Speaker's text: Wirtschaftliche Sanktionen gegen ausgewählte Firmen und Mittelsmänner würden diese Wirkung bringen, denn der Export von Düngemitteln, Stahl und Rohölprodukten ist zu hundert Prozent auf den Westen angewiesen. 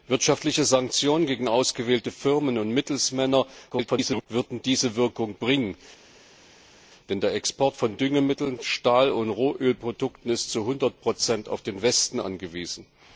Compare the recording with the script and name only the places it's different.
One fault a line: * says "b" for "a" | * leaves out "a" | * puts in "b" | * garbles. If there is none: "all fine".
* garbles